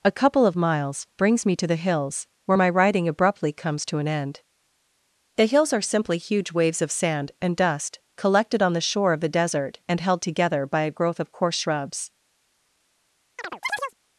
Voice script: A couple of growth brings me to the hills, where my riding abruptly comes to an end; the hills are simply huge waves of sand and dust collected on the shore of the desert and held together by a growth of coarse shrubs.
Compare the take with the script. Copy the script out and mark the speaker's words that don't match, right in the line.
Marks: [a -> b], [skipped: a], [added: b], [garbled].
A couple of [growth -> miles] brings me to the hills, where my riding abruptly comes to an end; the hills are simply huge waves of sand and dust collected on the shore of the desert and held together by a growth of coarse shrubs.